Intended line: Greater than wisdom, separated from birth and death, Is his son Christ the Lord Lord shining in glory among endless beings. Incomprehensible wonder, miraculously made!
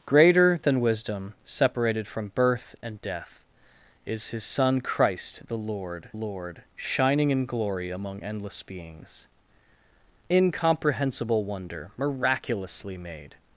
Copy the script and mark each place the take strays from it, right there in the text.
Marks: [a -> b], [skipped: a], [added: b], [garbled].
Greater than wisdom, separated from birth and death, Is his son Christ the Lord Lord shining in glory among endless beings. Incomprehensible wonder, miraculously made!